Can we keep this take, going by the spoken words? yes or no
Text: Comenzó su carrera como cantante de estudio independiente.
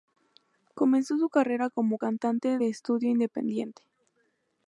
yes